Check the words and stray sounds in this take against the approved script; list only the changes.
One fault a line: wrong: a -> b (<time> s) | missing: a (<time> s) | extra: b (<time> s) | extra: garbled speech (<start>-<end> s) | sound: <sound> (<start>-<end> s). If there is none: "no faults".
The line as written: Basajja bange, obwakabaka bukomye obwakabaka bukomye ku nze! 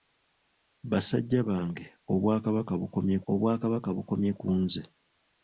no faults